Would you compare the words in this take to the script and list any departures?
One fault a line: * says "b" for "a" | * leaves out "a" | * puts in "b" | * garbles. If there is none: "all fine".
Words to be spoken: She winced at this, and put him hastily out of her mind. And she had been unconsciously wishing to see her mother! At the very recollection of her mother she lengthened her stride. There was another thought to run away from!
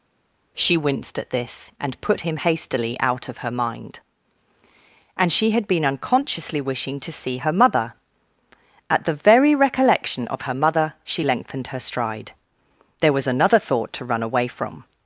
all fine